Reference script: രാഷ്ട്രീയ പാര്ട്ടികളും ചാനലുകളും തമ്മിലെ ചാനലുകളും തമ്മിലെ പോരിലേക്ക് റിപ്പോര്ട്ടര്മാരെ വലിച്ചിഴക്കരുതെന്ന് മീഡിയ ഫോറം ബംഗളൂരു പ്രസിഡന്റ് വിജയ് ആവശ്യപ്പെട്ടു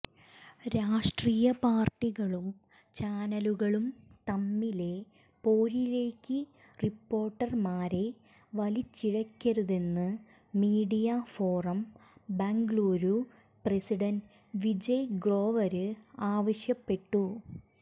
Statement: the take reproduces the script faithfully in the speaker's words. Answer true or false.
false